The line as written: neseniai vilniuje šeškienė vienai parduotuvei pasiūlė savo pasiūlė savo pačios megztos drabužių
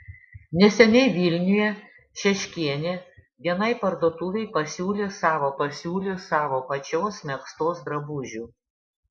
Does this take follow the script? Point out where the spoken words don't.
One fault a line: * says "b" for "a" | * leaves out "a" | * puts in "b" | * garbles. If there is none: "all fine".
all fine